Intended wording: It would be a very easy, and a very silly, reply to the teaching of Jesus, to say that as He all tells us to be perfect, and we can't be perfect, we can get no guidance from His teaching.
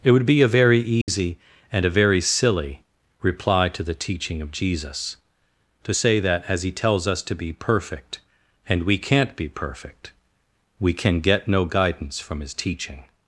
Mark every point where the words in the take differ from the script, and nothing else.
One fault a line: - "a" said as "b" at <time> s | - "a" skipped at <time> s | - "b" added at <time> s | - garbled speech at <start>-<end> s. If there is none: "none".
- "all" skipped at 6.7 s